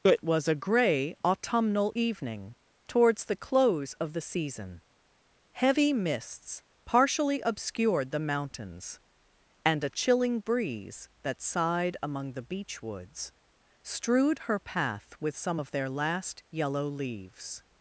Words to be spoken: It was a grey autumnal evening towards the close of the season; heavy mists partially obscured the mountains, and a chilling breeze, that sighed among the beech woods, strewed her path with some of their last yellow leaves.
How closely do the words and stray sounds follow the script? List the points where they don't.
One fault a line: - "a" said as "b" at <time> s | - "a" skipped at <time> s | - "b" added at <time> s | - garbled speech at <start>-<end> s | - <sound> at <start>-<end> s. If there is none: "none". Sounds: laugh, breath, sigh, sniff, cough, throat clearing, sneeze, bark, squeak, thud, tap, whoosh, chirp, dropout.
none